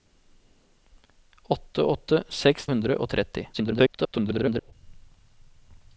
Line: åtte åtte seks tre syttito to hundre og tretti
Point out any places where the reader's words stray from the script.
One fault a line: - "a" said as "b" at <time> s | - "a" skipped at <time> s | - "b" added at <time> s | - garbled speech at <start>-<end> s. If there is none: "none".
- "tre syttito to" skipped at 2.7 s
- garbled speech at 3.5-4.7 s